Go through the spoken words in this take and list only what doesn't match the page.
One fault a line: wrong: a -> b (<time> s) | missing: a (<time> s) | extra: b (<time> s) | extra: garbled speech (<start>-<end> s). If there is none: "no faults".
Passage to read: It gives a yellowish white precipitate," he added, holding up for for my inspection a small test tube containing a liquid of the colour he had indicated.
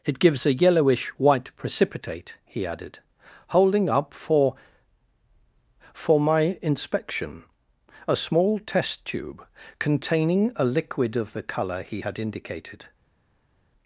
no faults